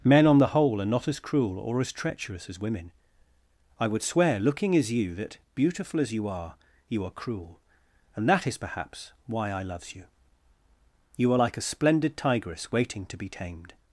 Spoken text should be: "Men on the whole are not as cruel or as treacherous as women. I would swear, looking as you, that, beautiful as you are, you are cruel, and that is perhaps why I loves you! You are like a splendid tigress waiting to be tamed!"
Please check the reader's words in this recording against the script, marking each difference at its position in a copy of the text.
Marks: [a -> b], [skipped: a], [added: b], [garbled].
"Men on the whole are not as cruel or as treacherous as women. I would swear, looking as you, that, beautiful as you are, you are cruel, and that is perhaps why I loves you! You are like a splendid tigress waiting to be tamed!"